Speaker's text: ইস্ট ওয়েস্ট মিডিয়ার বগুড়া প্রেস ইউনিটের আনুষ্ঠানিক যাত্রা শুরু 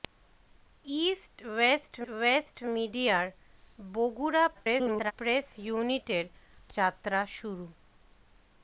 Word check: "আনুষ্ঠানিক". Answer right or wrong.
wrong